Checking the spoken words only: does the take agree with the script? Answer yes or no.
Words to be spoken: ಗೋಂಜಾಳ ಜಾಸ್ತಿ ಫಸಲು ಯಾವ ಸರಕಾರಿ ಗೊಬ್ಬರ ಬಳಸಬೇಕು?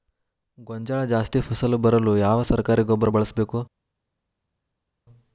no